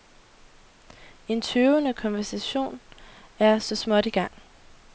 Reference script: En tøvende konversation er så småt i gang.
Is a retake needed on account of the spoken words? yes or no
no